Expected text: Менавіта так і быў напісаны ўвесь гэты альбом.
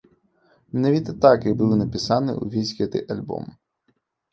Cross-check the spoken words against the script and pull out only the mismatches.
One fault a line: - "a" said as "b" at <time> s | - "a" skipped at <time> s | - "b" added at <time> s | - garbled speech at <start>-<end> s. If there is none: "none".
none